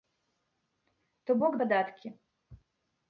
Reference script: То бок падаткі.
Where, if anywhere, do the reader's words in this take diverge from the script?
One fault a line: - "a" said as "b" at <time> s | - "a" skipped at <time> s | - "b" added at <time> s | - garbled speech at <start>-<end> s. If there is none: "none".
none